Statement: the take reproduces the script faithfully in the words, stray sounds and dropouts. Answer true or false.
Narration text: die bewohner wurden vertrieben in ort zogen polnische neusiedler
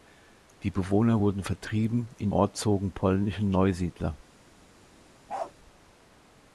false